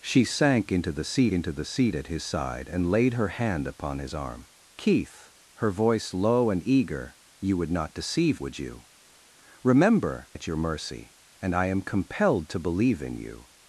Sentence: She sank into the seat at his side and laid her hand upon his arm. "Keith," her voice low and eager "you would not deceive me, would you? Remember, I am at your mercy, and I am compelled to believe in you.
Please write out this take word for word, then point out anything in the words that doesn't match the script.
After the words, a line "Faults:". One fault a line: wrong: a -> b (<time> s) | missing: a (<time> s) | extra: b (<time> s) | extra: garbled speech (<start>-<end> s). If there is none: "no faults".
She sank into the seat into the seat at his side and laid her hand upon his arm. "Keith," her voice low and eager "you would not deceive would you? Remember, at your mercy, and I am compelled to believe in you.
Faults:
extra: into the seat (1.3 s)
missing: me (8.4 s)
missing: I am (10.3 s)